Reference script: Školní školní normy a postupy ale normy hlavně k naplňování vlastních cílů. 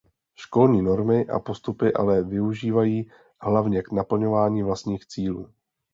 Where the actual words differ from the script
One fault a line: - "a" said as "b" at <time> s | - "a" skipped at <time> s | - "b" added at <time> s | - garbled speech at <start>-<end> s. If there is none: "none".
- "školní" skipped at 0.8 s
- "normy" said as "využívají" at 2.2 s